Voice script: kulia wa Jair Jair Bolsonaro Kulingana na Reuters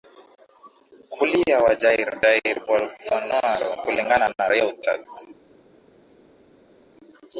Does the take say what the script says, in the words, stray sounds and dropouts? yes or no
yes